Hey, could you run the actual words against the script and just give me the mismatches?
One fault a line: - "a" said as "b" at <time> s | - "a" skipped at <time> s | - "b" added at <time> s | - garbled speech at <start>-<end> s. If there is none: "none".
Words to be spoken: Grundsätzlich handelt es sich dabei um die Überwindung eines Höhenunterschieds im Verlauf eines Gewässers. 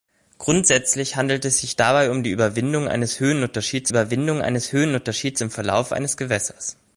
- "Überwindung eines Höhenunterschieds" added at 3.9 s